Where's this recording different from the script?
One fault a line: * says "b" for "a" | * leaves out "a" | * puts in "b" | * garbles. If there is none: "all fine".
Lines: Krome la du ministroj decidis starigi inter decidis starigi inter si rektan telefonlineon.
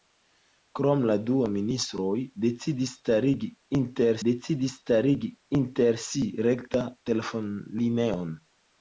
all fine